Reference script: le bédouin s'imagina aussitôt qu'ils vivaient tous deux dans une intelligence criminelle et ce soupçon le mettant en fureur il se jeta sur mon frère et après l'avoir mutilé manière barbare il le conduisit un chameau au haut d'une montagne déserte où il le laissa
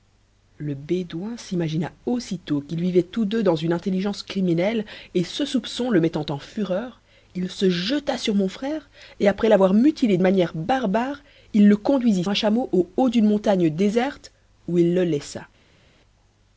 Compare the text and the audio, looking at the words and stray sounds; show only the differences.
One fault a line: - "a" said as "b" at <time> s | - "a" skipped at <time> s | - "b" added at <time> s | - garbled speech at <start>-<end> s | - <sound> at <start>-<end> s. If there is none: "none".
none